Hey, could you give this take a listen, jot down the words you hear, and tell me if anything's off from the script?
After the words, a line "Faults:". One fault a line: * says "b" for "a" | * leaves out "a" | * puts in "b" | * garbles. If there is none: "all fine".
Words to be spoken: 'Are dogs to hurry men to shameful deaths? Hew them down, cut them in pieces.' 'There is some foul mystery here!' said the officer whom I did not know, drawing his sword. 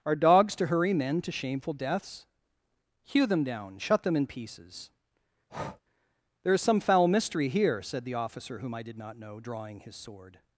'Are dogs to hurry men to shameful deaths? Hew them down, shut them in pieces.' 'There is some foul mystery here!' said the officer whom I did not know, drawing his sword.
Faults:
* says "shut" for "cut"